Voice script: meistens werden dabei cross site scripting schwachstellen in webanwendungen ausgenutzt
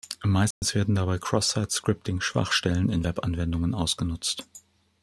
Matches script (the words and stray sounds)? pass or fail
fail